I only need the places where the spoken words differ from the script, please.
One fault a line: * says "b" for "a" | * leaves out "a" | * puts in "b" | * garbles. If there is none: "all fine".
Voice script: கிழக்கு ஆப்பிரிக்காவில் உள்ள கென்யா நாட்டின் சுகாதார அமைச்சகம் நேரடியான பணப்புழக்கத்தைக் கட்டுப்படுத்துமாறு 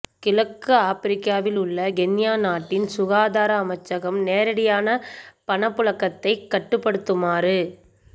all fine